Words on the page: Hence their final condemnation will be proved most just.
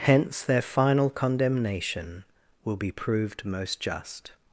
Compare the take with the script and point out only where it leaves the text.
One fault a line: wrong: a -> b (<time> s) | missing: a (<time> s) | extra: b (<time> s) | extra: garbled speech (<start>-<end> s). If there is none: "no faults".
no faults